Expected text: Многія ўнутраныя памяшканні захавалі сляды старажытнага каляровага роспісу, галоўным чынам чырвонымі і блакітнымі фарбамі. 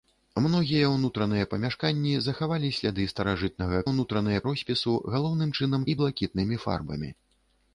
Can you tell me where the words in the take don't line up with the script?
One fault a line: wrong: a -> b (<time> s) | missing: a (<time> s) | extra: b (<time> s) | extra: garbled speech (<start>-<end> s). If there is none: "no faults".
wrong: каляровага -> ўнутраныя (3.9 s)
missing: чырвонымі (5.8 s)